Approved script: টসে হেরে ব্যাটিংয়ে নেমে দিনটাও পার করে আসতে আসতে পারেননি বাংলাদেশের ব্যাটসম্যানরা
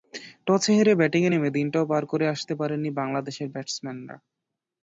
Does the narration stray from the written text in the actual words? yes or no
yes